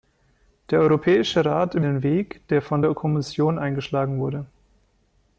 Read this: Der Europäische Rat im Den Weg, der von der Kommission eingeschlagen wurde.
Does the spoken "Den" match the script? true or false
true